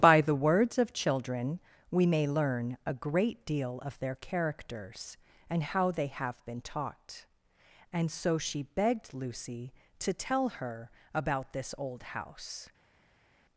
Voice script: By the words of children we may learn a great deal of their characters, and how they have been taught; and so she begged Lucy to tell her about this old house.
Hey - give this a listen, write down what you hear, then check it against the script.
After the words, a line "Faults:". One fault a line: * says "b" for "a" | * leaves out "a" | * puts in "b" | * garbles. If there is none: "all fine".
By the words of children we may learn a great deal of their characters, and how they have been taught; and so she begged Lucy to tell her about this old house.
Faults:
all fine